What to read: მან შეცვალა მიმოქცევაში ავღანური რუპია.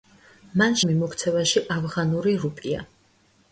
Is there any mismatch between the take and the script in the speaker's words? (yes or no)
yes